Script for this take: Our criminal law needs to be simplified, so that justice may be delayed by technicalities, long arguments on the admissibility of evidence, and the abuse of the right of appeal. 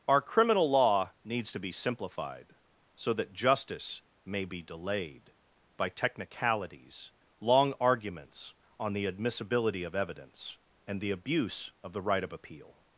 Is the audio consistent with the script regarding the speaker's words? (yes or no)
yes